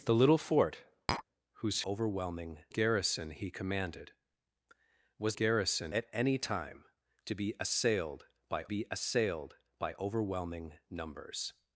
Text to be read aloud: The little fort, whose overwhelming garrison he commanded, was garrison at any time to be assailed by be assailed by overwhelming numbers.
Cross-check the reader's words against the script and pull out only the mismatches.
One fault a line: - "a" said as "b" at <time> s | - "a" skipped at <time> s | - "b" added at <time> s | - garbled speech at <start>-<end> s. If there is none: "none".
none